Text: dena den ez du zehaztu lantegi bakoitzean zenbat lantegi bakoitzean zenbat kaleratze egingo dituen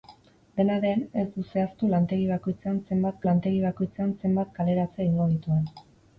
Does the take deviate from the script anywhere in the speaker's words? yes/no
no